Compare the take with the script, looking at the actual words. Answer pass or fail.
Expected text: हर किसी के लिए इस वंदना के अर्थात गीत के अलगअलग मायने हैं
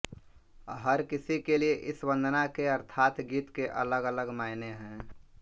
pass